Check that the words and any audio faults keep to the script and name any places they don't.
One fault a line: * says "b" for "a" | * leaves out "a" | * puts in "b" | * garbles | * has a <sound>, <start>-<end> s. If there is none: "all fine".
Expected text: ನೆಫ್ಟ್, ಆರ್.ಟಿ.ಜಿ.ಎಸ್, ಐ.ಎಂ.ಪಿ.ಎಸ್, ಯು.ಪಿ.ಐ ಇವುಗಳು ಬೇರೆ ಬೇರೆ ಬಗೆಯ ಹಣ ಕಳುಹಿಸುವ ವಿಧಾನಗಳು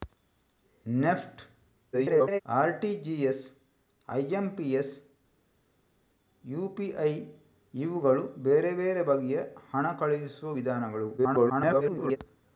* garbles
* garbles